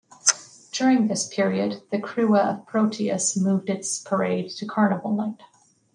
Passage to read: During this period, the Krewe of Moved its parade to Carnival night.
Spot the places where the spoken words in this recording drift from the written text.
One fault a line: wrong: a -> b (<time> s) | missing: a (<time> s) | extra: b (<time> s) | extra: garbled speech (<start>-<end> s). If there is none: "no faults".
extra: Proteus (2.6 s)